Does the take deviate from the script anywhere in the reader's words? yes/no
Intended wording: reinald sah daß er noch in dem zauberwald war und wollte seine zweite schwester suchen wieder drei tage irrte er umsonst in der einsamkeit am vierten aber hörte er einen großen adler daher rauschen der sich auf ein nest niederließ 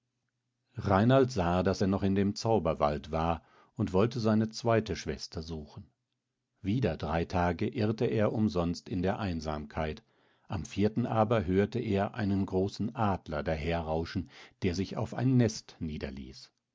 no